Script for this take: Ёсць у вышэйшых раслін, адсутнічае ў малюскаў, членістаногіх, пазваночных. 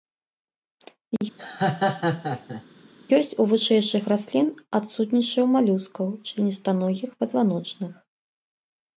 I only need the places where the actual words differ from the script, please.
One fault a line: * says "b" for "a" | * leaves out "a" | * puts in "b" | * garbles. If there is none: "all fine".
all fine